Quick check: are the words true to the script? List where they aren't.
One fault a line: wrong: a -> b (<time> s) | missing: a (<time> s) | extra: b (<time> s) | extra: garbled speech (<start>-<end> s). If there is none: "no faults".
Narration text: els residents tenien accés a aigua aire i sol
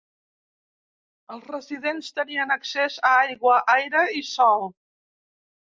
no faults